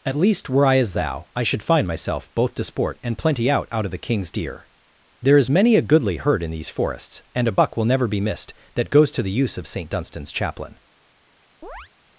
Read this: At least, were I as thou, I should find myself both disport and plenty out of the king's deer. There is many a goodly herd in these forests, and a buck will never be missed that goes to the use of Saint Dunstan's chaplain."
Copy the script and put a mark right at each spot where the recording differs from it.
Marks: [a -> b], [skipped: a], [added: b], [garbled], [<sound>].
At least, were I as thou, I should find myself both disport and plenty out [added: out] of the king's deer. There is many a goodly herd in these forests, and a buck will never be missed that goes to the use of Saint Dunstan's chaplain." [chirp]